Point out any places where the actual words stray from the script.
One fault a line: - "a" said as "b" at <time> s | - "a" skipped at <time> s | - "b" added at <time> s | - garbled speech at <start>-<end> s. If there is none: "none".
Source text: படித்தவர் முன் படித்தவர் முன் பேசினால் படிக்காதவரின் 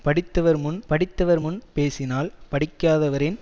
none